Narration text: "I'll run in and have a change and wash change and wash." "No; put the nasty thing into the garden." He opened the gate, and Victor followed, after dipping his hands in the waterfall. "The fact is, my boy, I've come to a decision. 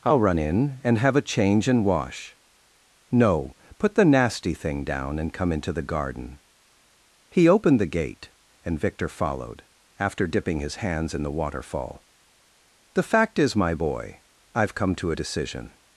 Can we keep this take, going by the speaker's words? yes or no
no